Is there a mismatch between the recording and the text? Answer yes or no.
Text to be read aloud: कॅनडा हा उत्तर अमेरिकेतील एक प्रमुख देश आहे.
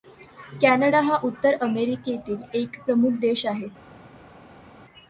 no